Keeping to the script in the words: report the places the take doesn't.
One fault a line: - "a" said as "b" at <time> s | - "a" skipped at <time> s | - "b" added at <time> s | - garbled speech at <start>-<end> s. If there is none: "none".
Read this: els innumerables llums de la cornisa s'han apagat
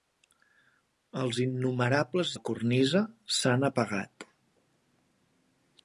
- "llums de" skipped at 2.3 s